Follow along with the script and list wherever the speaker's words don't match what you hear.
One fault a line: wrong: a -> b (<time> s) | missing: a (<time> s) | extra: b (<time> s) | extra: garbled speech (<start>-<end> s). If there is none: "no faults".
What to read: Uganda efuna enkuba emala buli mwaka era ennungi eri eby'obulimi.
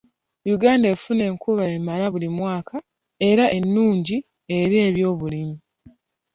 no faults